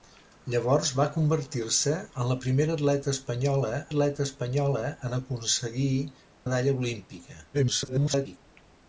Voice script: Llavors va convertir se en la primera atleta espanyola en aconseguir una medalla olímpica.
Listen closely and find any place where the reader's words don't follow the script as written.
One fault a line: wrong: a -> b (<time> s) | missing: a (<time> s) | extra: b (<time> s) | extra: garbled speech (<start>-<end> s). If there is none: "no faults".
extra: atleta espanyola (3.9 s)
missing: una (5.9 s)
extra: garbled speech (7.5-8.4 s)